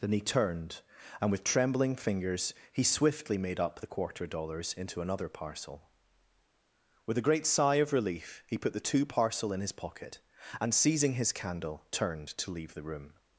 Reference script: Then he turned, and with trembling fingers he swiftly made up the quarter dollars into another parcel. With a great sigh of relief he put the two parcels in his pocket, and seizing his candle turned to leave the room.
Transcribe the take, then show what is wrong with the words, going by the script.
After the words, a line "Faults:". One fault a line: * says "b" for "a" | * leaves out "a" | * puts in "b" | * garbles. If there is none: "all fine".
Then he turned, and with trembling fingers he swiftly made up the quarter dollars into another parcel. With a great sigh of relief he put the two parcel in his pocket, and seizing his candle turned to leave the room.
Faults:
* says "parcel" for "parcels"